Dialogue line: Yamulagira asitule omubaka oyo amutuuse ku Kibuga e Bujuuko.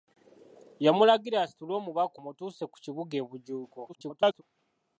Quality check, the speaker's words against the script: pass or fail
fail